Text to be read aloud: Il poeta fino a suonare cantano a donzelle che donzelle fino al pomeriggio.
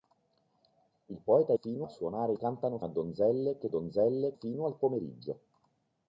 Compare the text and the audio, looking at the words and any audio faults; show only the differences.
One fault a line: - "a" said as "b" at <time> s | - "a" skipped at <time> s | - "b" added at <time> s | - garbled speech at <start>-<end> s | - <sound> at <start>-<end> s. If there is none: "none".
none